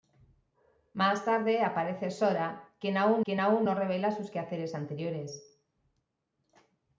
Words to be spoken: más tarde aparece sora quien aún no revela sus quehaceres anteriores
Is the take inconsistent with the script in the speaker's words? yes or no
yes